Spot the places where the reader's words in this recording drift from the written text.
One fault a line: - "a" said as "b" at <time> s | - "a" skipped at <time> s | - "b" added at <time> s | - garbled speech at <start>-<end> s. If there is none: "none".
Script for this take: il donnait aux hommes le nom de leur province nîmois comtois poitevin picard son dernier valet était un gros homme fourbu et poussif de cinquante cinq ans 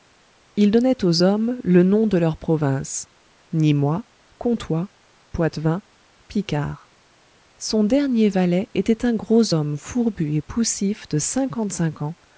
none